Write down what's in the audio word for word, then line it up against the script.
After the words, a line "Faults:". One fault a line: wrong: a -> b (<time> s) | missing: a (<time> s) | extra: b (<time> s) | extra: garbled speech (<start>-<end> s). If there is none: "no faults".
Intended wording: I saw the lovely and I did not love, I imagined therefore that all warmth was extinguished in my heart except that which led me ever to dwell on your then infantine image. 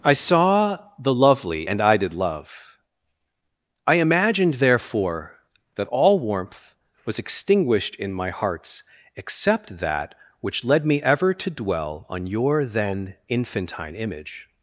I saw the lovely and I did love, I imagined therefore that all warmth was extinguished in my hearts except that which led me ever to dwell on your then infantine image.
Faults:
missing: not (2.1 s)
wrong: heart -> hearts (8.3 s)